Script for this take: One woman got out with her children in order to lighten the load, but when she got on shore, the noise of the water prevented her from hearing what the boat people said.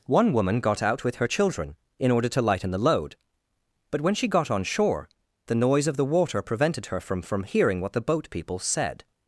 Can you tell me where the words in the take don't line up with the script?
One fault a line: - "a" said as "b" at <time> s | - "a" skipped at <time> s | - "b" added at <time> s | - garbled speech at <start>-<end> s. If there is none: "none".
- "from" added at 7.2 s